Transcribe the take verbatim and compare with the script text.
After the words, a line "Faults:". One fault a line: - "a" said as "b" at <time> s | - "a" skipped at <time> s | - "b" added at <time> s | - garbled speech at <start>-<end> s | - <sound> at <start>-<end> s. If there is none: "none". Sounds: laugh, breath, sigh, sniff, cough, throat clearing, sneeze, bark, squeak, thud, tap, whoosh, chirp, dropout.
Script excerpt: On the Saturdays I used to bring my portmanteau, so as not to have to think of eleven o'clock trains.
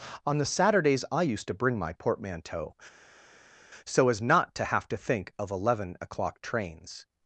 On the Saturdays I used to bring my portmanteau, so as not to have to think of eleven o'clock trains.
Faults:
none